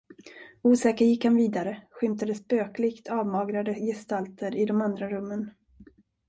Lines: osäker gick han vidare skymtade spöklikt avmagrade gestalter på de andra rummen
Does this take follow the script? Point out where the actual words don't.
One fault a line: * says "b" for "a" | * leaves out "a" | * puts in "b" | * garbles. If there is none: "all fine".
* says "i" for "på"